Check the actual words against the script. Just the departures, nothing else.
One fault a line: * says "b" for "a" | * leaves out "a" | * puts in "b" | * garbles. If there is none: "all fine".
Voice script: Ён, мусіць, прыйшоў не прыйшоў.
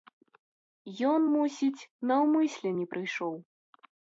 * says "наўмысля" for "прыйшоў"